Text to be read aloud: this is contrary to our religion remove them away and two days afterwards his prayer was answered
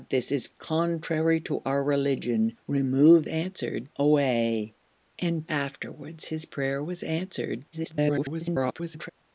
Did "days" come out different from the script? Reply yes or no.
yes